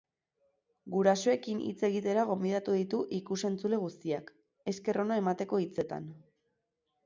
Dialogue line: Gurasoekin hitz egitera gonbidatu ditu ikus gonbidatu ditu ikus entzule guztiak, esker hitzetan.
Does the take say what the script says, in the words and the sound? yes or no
no